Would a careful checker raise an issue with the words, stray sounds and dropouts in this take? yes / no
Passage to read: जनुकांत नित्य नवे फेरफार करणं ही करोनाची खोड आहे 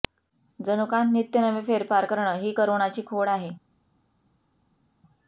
no